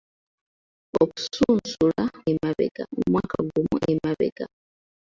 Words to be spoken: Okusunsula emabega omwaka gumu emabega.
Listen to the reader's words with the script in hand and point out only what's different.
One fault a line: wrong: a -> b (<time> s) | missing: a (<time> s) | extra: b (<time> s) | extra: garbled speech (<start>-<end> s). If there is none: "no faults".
no faults